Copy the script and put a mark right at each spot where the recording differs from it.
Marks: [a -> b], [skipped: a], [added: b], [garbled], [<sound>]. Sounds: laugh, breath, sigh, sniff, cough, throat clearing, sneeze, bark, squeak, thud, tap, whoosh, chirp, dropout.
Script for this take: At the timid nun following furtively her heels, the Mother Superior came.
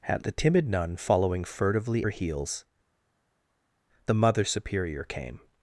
At the timid nun following furtively her heels, the Mother Superior came.